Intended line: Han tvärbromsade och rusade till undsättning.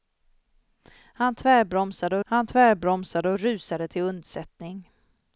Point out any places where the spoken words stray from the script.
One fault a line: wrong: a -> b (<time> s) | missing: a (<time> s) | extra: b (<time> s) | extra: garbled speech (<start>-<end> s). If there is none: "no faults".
extra: han tvärbromsade (2.2 s)